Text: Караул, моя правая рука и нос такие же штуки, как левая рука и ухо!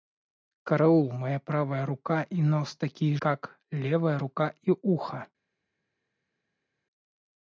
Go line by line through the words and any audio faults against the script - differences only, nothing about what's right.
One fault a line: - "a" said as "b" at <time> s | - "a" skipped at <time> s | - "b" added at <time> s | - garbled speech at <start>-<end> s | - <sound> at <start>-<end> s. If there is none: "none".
- "же штуки" skipped at 3.1 s